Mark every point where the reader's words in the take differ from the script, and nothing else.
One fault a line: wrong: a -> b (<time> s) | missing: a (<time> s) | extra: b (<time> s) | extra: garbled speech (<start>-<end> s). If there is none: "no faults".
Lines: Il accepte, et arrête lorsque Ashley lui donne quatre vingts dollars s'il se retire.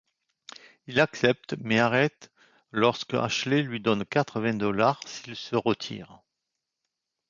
wrong: et -> mais (1.6 s)